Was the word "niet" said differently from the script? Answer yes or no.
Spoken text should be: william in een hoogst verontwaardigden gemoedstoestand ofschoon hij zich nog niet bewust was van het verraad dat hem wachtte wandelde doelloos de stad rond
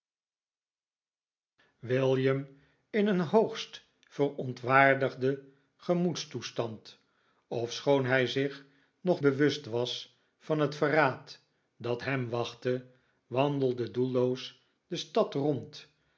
yes